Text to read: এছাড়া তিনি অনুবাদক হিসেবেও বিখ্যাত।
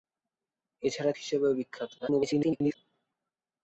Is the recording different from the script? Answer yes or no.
yes